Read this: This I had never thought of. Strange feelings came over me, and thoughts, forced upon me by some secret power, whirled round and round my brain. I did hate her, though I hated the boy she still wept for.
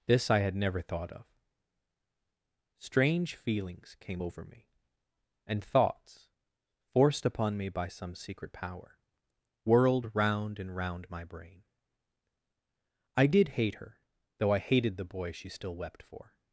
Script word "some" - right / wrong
right